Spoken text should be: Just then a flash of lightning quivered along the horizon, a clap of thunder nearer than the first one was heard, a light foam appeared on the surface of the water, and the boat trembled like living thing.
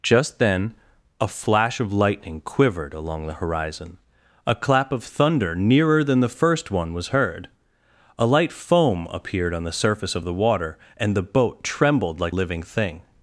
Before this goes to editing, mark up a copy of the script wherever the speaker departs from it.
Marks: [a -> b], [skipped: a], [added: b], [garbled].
Just then a flash of lightning quivered along the horizon, a clap of thunder nearer than the first one was heard, a light foam appeared on the surface of the water, and the boat trembled like living thing.